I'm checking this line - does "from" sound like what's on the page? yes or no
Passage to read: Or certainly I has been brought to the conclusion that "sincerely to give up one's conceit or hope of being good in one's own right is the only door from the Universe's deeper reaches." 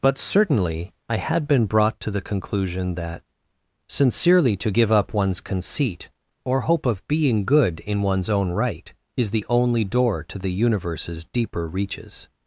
no